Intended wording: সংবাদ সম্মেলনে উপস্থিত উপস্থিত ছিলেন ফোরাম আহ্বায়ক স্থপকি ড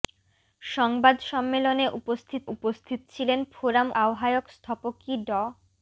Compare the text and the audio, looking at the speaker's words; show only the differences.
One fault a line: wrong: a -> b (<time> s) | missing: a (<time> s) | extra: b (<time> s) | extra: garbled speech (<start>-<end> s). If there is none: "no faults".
no faults